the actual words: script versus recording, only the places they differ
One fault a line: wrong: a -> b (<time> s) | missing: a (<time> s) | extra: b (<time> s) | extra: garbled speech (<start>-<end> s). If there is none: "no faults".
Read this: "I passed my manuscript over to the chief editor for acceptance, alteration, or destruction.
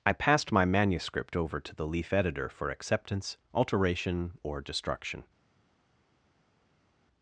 wrong: chief -> leaf (1.9 s)